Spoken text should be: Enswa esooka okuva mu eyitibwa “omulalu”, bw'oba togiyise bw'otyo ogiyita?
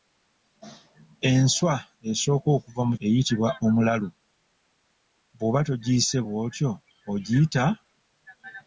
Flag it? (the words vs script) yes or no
no